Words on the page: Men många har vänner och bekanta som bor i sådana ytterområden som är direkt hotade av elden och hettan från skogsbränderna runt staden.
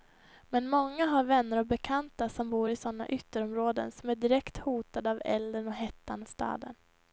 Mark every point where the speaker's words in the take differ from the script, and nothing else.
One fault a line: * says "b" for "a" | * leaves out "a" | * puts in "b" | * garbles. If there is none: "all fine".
* leaves out "från skogsbränderna runt"